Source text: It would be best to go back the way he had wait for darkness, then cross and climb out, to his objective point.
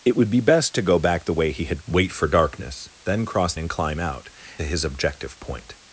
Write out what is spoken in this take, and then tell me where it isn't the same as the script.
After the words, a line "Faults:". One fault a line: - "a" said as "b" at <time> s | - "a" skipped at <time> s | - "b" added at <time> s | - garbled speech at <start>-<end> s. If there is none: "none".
It would be best to go back the way he had wait for darkness, then cross and climb out, to his objective point.
Faults:
none